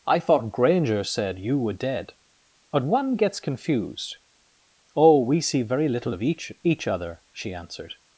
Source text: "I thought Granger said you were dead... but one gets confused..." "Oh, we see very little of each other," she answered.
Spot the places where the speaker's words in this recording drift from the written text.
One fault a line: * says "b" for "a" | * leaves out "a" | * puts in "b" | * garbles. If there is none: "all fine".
* puts in "each"